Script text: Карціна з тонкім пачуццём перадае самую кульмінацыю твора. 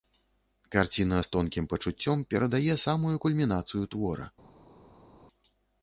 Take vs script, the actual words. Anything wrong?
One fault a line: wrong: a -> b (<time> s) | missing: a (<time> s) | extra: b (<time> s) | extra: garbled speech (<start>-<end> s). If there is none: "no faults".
no faults